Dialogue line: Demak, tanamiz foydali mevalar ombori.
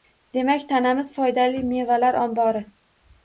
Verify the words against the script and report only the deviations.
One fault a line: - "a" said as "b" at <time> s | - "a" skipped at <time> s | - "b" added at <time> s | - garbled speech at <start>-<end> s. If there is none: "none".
none